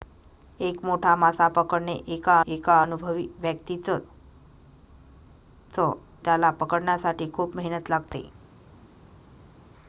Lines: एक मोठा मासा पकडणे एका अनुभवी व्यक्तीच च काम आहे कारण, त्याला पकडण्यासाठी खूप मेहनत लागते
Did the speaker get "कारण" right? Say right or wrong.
wrong